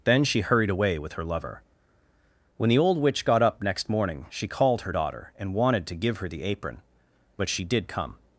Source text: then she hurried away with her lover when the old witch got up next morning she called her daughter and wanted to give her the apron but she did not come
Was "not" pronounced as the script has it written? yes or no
no